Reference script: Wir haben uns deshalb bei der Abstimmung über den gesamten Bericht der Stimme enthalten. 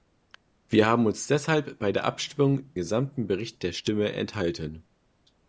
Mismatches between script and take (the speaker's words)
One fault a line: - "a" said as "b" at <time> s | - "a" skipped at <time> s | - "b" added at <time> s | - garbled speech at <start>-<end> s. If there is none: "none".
- "über den" skipped at 2.7 s